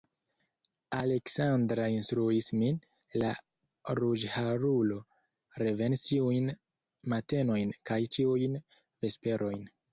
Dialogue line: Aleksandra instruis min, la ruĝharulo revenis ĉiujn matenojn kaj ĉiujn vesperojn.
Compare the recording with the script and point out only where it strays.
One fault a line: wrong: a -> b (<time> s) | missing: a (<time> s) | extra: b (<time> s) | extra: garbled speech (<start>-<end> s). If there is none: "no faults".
no faults